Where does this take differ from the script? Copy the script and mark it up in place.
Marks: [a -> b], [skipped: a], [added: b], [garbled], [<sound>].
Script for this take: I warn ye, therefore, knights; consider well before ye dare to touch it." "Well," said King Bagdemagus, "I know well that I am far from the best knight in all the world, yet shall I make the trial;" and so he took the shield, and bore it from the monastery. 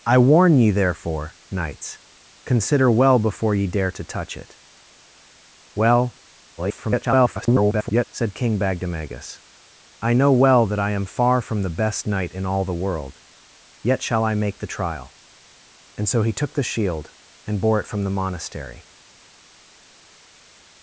I warn ye, therefore, knights; consider well before ye dare to touch it." "Well," [garbled] said King Bagdemagus, "I know well that I am far from the best knight in all the world, yet shall I make the trial;" and so he took the shield, and bore it from the monastery.